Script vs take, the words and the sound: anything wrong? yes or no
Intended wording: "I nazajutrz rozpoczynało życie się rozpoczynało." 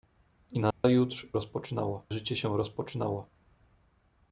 yes